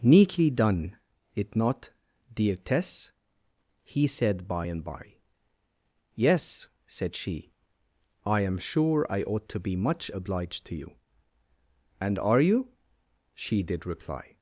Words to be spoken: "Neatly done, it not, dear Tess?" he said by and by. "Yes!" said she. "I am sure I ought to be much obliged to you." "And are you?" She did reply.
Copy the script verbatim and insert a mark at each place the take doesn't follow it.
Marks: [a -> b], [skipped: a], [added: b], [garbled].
"Neatly done, it not, dear Tess?" he said by and by. "Yes!" said she. "I am sure I ought to be much obliged to you." "And are you?" She did reply.